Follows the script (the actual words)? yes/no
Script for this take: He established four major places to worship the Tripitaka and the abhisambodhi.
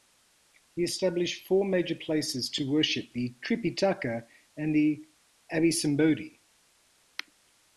yes